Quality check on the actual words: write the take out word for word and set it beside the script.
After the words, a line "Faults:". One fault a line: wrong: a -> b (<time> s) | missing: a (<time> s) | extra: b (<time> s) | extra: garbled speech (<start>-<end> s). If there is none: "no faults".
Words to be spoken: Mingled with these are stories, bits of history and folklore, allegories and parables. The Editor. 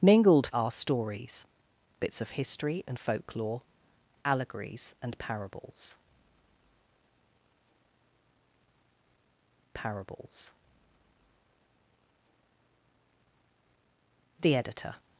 Mingled are stories, bits of history and folklore, allegories and parables parables. The Editor.
Faults:
missing: with these (0.5 s)
extra: parables (9.7 s)